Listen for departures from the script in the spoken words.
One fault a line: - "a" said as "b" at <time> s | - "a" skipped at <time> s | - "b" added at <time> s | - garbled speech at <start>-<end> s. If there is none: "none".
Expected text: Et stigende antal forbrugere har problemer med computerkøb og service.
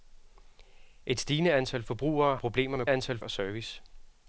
- "har" skipped at 2.4 s
- "computerkøb" said as "antal" at 2.9 s